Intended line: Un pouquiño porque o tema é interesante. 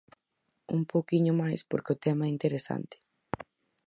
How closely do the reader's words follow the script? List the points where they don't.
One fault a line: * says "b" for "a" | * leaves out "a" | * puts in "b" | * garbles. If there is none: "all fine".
* puts in "máis"